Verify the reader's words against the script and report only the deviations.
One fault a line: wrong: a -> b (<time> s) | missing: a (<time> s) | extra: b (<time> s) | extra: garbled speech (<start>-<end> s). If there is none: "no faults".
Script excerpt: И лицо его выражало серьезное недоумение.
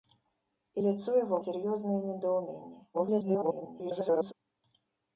missing: выражало (1.4 s)
extra: garbled speech (2.9-4.3 s)